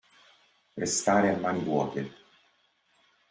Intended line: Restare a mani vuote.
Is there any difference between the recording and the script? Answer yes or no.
no